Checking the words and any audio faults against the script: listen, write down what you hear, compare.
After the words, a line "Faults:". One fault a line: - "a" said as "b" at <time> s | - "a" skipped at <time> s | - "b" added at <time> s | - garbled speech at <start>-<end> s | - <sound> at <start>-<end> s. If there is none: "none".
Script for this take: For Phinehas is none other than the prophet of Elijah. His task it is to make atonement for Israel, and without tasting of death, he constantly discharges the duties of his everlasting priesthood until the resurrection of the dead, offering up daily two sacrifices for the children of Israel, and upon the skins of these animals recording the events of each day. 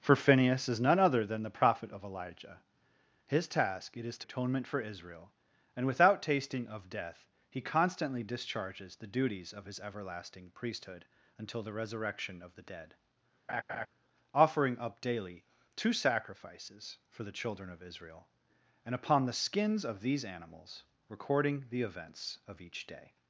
For Phinehas is none other than the prophet of Elijah. His task it is to atonement for Israel, and without tasting of death, he constantly discharges the duties of his everlasting priesthood until the resurrection of the dead, offering up daily two sacrifices for the children of Israel, and upon the skins of these animals recording the events of each day.
Faults:
- "make" skipped at 4.3 s
- laugh at 13.5-13.9 s